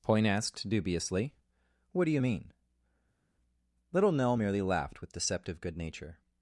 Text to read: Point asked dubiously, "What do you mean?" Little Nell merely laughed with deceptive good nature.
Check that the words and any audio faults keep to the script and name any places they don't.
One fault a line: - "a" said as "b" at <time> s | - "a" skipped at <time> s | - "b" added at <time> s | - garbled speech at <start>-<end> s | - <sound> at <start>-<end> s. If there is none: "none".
none